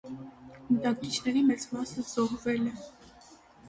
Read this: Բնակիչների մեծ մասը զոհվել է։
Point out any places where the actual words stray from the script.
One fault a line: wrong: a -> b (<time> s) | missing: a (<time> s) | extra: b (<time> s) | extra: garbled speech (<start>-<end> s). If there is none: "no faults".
no faults